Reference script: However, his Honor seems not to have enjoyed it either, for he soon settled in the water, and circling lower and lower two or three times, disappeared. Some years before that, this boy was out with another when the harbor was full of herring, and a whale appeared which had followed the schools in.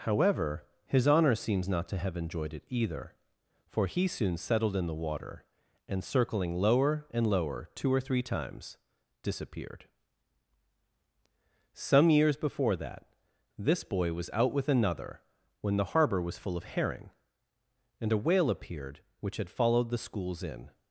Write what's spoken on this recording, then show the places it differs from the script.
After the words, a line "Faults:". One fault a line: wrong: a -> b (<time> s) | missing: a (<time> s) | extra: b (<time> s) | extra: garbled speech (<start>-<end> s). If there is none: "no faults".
However, his Honor seems not to have enjoyed it either, for he soon settled in the water, and circling lower and lower two or three times, disappeared. Some years before that, this boy was out with another when the harbor was full of herring, and a whale appeared which had followed the schools in.
Faults:
no faults